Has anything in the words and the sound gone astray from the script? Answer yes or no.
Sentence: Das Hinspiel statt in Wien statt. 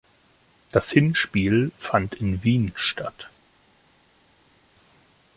yes